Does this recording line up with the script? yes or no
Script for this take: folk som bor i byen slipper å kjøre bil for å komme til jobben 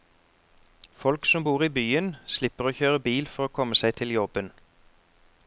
no